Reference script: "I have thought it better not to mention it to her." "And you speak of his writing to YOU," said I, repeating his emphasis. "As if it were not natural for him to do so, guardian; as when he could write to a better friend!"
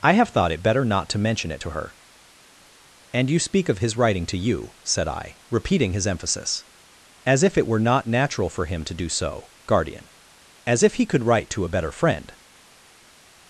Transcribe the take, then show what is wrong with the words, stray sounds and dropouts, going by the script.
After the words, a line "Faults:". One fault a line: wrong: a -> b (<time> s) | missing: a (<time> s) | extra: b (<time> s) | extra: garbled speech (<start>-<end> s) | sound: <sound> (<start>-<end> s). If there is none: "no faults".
"I have thought it better not to mention it to her." "And you speak of his writing to YOU," said I, repeating his emphasis. "As if it were not natural for him to do so, guardian; as if he could write to a better friend!"
Faults:
wrong: when -> if (10.8 s)